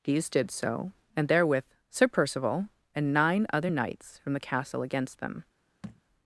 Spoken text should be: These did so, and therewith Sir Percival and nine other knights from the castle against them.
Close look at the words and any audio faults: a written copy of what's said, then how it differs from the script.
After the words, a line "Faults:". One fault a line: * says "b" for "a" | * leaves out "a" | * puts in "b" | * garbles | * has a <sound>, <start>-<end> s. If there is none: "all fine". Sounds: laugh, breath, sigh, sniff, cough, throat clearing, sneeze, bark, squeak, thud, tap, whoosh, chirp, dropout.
These did so, and therewith Sir Percival and nine other knights from the castle against them.
Faults:
* has a thud, 5.8-6.0 s